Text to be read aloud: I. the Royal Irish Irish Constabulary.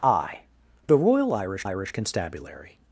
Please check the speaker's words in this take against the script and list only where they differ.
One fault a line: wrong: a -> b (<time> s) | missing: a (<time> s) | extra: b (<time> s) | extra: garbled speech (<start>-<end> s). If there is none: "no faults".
no faults